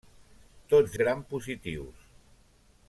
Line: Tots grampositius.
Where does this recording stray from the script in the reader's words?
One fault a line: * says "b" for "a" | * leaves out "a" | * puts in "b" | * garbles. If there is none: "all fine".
all fine